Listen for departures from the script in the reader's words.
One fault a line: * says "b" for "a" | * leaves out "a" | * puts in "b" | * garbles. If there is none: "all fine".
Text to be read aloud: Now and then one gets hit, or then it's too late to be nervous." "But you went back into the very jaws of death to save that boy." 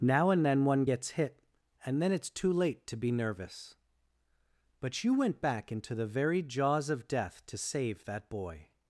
* says "and" for "or"